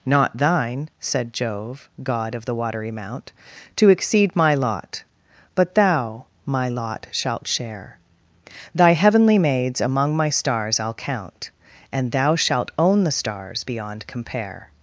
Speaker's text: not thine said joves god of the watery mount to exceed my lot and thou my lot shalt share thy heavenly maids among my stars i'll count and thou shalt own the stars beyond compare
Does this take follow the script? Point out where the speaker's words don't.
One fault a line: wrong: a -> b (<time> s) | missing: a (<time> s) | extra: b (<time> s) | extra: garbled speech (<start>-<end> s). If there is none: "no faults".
wrong: joves -> jove (1.3 s)
wrong: and -> but (5.5 s)